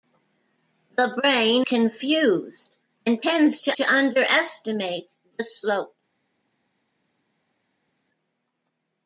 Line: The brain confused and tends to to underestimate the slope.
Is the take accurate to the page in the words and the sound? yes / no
yes